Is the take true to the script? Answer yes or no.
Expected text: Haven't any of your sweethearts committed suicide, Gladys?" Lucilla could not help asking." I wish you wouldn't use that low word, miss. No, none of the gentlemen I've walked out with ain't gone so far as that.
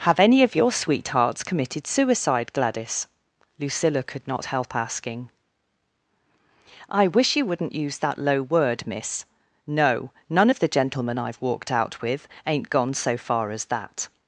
no